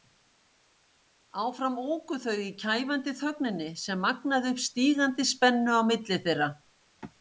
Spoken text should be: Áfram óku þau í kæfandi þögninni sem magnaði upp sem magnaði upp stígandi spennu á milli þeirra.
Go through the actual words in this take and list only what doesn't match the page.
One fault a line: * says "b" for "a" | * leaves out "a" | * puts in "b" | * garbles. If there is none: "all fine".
* leaves out "sem magnaði upp"